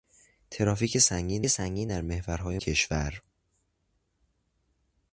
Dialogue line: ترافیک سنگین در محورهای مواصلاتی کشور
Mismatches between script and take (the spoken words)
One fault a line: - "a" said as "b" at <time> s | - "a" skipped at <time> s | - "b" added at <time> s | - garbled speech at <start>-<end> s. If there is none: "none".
- "سنگین" added at 1.5 s
- "مواصلاتی" skipped at 2.6 s